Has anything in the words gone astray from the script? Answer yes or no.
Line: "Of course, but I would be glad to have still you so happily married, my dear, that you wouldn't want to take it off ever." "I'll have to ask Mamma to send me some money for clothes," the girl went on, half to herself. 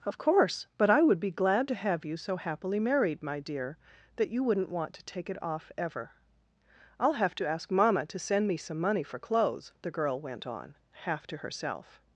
yes